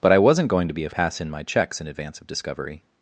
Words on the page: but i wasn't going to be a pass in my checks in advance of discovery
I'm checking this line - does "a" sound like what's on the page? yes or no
yes